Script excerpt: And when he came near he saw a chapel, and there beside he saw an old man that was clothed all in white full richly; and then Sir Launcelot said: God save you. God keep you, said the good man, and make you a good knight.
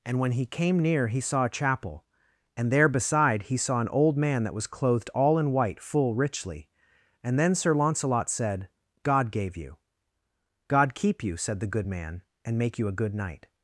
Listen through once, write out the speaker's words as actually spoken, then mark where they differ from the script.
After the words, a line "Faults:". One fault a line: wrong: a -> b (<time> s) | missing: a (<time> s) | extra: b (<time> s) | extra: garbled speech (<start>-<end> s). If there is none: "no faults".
And when he came near he saw a chapel, and there beside he saw an old man that was clothed all in white full richly; and then Sir Launcelot said: God gave you. God keep you, said the good man, and make you a good knight.
Faults:
wrong: save -> gave (9.3 s)